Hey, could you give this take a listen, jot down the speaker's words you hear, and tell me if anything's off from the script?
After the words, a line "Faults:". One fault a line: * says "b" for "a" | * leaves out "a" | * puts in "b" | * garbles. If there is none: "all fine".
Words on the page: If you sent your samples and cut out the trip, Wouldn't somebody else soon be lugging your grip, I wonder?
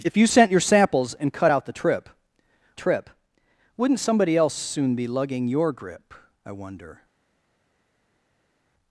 If you sent your samples and cut out the trip trip, Wouldn't somebody else soon be lugging your grip, I wonder?
Faults:
* puts in "trip"